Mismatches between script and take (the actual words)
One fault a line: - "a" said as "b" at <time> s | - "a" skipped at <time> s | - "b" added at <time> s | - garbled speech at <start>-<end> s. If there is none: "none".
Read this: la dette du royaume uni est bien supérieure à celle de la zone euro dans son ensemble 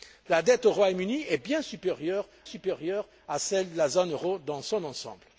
- "supérieure" added at 2.4 s